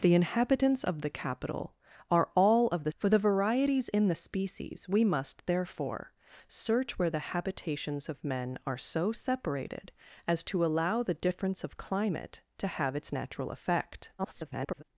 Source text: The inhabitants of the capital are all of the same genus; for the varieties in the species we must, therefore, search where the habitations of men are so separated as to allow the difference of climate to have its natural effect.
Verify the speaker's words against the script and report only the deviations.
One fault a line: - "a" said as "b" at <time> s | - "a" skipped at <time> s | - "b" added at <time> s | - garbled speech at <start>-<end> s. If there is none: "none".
- "same genus" skipped at 2.9 s
- garbled speech at 14.2-14.8 s